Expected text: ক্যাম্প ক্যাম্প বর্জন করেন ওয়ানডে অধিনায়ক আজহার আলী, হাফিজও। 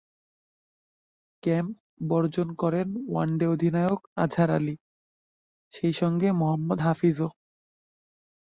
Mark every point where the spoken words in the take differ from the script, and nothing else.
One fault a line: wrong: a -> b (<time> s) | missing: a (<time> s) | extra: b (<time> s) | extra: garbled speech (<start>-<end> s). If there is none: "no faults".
missing: ক্যাম্প (1.7 s)
extra: সেই সঙ্গে মোহাম্মদ (5.7 s)